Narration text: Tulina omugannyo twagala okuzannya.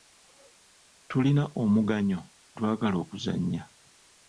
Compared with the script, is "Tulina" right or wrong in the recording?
right